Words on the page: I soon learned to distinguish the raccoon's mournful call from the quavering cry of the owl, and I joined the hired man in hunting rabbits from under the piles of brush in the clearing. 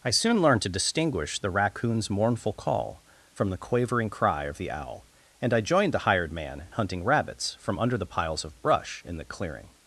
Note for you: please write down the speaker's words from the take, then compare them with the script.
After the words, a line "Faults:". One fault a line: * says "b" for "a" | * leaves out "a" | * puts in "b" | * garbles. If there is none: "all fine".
I soon learned to distinguish the raccoon's mournful call from the quavering cry of the owl, and I joined the hired man hunting rabbits from under the piles of brush in the clearing.
Faults:
* leaves out "in"